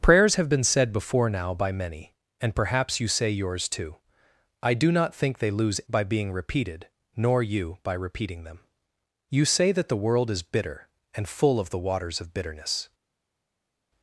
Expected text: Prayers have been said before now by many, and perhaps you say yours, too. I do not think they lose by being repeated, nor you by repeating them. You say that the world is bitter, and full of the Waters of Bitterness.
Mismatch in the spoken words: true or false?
false